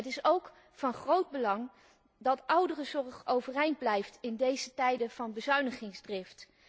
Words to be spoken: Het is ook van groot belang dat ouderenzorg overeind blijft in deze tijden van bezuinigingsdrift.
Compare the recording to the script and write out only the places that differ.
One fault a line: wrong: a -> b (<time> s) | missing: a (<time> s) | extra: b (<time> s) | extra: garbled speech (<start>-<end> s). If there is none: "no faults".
no faults